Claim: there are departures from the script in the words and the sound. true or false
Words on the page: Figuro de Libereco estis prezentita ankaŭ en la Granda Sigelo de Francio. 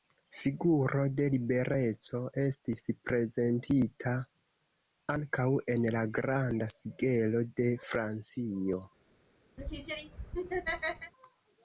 true